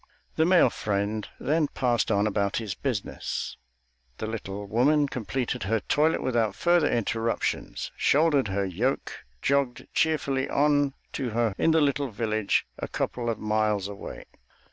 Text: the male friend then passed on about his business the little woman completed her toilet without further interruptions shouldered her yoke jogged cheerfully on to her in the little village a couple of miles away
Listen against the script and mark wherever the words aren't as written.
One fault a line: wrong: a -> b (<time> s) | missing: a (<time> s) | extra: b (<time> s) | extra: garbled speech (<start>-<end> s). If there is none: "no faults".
no faults